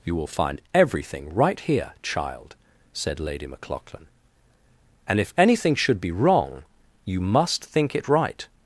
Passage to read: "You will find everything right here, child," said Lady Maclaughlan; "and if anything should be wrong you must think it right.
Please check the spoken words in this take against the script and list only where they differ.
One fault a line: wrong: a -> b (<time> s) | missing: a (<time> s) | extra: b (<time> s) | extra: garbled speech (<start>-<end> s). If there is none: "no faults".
no faults